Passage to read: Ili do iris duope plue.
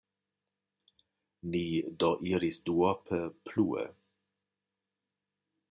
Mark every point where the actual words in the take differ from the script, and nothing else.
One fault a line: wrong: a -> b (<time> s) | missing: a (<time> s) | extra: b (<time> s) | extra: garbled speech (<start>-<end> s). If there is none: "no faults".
wrong: Ili -> Ni (1.5 s)